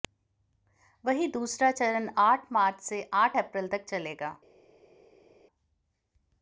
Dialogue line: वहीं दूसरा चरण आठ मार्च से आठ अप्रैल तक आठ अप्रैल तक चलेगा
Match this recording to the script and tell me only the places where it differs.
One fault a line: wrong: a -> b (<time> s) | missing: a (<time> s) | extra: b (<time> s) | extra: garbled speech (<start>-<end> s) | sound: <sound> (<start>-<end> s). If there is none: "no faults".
missing: आठ अप्रैल तक (3.9 s)